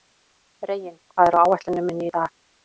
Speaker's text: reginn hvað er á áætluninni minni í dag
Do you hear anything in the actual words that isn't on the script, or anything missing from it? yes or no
no